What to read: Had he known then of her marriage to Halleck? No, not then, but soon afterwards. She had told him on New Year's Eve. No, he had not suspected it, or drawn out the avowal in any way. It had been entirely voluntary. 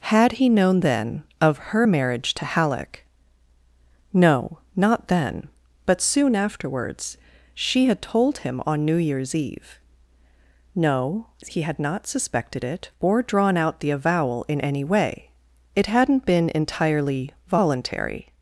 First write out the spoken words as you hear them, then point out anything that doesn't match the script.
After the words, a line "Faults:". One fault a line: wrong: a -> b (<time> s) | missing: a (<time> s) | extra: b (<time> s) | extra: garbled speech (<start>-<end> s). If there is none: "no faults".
Had he known then of her marriage to Halleck? No, not then, but soon afterwards. She had told him on New Year's Eve. No, he had not suspected it, or drawn out the avowal in any way. It hadn't been entirely voluntary.
Faults:
wrong: had -> hadn't (15.9 s)